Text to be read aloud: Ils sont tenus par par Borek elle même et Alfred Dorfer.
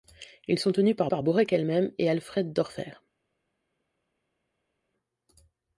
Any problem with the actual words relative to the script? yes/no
no